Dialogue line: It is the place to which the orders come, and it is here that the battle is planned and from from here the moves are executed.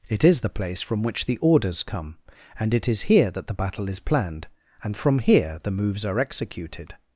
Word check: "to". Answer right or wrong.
wrong